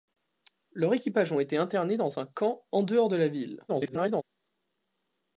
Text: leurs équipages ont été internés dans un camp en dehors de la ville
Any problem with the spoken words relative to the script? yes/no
yes